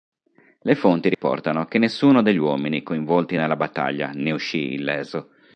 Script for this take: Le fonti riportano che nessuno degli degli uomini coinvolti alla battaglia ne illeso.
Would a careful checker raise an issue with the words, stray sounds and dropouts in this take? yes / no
yes